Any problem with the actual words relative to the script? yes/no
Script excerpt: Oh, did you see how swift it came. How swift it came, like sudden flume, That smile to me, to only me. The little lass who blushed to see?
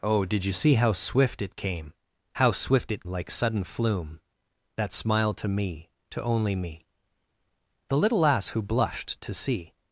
yes